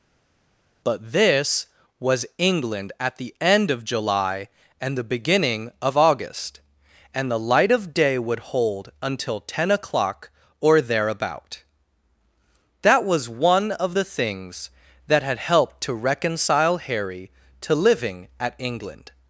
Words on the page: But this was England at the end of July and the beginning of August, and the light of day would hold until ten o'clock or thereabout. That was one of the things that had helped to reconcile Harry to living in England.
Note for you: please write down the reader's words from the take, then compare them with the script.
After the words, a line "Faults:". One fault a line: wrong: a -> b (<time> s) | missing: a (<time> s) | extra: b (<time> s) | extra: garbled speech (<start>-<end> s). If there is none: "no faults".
But this was England at the end of July and the beginning of August, and the light of day would hold until ten o'clock or thereabout. That was one of the things that had helped to reconcile Harry to living at England.
Faults:
wrong: in -> at (18.4 s)